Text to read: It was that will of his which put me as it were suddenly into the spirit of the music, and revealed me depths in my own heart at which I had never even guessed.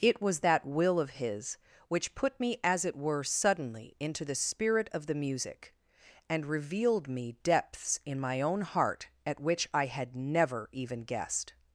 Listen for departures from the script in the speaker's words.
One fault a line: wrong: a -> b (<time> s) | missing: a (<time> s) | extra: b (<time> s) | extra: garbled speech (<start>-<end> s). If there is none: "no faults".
no faults